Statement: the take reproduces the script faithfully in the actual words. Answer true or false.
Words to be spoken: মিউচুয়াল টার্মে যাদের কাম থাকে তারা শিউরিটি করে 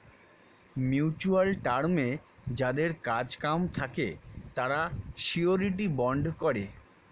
false